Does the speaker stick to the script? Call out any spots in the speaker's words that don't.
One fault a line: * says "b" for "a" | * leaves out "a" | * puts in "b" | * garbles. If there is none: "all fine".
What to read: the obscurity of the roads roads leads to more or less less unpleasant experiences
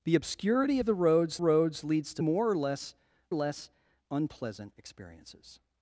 all fine